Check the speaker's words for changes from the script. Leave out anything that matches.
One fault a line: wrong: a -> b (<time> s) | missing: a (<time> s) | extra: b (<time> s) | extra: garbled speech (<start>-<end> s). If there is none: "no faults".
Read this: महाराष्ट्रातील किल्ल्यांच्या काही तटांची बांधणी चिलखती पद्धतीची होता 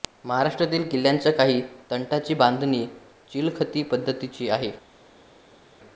wrong: होता -> आहे (4.5 s)